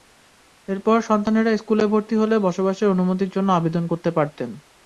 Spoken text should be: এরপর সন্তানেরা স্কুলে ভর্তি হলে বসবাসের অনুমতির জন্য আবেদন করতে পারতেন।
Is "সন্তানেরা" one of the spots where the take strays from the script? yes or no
no